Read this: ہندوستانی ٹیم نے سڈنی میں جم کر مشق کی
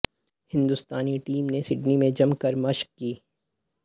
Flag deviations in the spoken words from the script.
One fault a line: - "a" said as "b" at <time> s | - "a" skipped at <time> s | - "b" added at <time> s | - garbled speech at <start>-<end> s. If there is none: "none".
none